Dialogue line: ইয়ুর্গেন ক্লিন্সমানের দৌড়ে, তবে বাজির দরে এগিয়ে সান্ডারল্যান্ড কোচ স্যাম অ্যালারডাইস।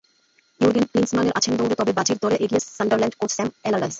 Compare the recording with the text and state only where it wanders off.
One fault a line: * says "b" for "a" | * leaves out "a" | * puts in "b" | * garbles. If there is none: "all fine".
* puts in "আছেন"